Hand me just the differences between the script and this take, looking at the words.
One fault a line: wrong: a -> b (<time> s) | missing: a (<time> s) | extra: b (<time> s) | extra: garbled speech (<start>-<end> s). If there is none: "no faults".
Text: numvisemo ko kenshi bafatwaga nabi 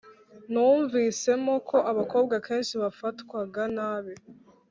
extra: abakobwa (1.9 s)